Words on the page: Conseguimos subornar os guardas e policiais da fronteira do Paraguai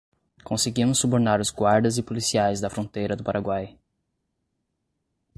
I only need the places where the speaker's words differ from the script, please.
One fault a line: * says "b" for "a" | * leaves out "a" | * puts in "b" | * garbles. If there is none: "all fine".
all fine